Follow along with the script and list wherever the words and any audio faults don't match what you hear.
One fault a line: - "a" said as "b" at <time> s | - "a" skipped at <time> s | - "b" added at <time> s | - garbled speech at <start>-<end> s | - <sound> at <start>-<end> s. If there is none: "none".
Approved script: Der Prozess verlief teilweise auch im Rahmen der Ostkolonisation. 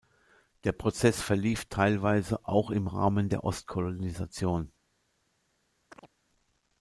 - chirp at 5.9-6.1 s